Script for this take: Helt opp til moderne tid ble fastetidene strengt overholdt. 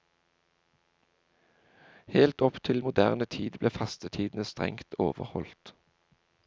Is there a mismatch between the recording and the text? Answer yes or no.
no